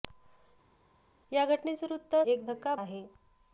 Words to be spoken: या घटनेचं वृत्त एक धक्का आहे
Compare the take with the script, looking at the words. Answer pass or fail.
pass